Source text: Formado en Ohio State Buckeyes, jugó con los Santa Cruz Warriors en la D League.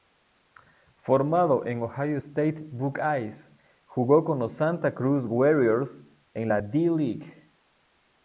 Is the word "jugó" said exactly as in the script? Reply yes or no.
yes